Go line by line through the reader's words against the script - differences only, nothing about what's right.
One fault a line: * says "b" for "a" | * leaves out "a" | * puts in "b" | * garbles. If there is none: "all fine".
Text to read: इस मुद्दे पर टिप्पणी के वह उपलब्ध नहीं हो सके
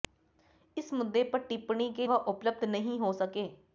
all fine